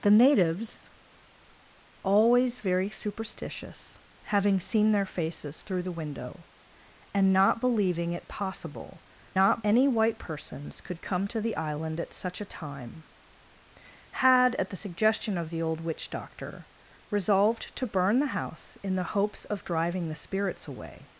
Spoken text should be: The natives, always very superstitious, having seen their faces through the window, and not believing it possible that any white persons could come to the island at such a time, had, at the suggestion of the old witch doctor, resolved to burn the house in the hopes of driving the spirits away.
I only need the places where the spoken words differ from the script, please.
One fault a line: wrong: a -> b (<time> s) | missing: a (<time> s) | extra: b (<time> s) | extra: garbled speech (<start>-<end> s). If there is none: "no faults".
wrong: that -> not (9.3 s)